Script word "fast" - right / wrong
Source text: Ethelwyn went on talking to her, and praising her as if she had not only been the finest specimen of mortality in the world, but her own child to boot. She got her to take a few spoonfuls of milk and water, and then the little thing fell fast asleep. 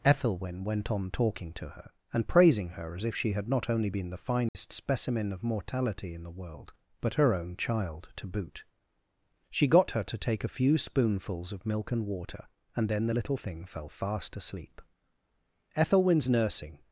right